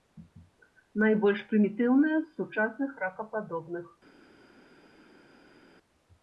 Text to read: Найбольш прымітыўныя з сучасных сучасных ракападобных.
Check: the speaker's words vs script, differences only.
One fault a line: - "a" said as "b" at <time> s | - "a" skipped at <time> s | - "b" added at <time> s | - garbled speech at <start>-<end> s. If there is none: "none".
- "сучасных" skipped at 2.9 s